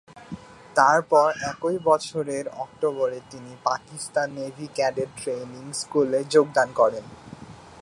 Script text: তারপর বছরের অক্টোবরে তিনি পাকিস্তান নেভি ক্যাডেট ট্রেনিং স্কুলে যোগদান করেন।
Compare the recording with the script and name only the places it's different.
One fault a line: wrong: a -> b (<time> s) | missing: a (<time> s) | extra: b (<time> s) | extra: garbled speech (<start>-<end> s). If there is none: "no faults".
extra: একই (1.5 s)